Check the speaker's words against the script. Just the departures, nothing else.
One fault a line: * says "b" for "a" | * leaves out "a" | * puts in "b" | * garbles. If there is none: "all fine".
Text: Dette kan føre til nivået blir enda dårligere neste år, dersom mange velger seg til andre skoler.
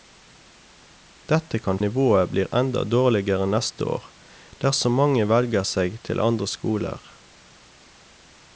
* leaves out "føre til"